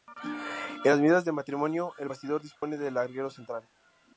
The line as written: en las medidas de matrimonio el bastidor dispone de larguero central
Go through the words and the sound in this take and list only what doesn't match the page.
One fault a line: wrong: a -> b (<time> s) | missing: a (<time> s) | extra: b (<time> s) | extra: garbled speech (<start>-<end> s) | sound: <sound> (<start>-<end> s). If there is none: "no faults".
sound: dropout (2.6-2.6 s)